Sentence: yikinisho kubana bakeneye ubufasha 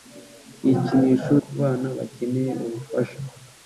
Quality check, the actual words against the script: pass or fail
pass